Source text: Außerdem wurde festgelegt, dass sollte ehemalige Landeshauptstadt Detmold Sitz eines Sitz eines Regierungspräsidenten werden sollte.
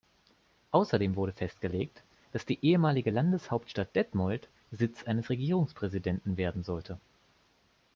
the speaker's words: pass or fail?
fail